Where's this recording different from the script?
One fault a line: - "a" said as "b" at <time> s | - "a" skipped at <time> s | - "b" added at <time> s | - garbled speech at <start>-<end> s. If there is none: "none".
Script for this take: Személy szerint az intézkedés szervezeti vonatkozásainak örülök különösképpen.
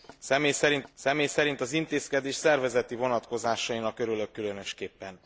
- "személy szerint" added at 0.9 s